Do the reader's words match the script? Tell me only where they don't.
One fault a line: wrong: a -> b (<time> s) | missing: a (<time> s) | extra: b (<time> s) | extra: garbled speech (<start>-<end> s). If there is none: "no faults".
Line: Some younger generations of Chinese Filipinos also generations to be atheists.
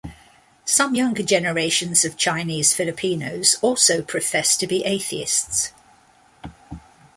wrong: generations -> profess (4.0 s)